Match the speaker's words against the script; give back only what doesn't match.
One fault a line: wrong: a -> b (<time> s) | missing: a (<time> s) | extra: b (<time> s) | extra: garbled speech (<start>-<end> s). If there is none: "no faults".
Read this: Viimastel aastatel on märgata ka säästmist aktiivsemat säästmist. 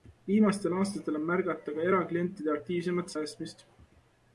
wrong: säästmist -> eraklientide (1.9 s)